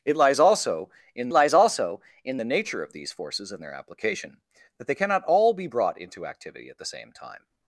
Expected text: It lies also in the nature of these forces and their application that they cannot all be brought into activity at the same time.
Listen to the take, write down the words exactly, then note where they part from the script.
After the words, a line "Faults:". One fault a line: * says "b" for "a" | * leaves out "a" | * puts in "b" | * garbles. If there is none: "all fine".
It lies also in lies also in the nature of these forces and their application that they cannot all be brought into activity at the same time.
Faults:
* puts in "lies also in"